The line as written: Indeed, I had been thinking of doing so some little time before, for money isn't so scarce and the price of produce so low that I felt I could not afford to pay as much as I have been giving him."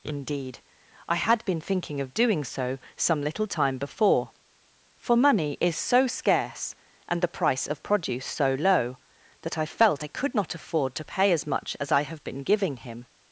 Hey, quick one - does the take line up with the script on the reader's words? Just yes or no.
no